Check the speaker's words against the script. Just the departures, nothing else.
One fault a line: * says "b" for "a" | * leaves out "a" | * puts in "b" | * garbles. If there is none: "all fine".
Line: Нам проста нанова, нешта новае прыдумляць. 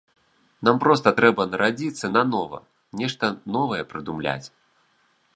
* puts in "трэба нарадзіцца"